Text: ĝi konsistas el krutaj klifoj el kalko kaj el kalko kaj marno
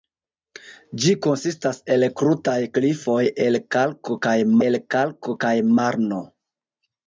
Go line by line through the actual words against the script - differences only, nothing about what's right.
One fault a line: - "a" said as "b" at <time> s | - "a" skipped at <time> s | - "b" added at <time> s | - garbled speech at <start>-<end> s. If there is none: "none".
none